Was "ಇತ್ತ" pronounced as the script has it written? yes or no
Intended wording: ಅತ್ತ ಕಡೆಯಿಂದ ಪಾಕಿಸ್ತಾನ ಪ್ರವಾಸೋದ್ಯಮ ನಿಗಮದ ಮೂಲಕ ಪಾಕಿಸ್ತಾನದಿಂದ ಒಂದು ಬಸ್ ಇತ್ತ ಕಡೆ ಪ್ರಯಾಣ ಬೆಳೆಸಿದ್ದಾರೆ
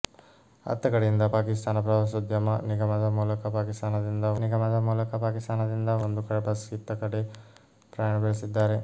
yes